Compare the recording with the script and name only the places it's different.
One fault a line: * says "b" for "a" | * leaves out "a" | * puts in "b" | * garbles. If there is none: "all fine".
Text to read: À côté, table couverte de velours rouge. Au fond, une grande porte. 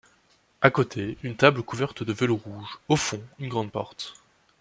* puts in "une"